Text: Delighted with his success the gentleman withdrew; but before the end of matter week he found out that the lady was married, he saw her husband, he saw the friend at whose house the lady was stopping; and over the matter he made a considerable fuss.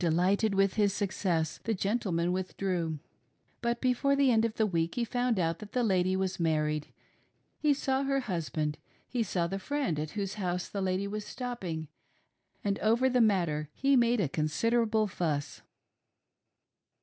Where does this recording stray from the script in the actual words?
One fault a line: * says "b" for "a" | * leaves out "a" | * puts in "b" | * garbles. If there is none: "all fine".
* says "the" for "matter"